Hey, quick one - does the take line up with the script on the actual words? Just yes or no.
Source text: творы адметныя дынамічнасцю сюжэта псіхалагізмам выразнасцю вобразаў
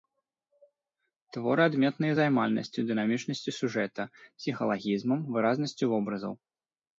no